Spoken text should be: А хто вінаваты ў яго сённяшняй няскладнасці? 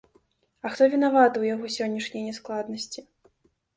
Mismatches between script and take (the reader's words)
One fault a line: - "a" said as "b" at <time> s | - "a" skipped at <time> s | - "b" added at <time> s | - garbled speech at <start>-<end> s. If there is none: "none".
none